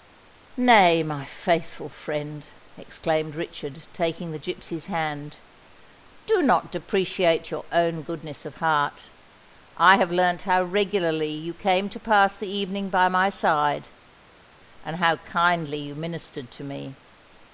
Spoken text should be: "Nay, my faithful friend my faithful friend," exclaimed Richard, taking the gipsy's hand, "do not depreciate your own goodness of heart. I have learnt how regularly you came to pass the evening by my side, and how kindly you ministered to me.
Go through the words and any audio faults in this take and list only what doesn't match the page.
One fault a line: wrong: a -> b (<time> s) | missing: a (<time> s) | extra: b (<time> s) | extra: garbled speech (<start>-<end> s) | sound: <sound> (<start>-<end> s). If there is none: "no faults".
missing: my faithful friend (2.5 s)